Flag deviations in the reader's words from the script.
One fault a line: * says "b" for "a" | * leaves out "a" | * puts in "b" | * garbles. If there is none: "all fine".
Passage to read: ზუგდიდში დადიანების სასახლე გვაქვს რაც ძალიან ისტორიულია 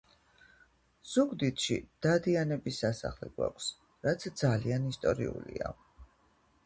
all fine